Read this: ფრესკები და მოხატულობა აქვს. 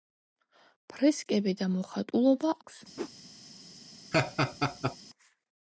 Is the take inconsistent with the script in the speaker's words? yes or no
no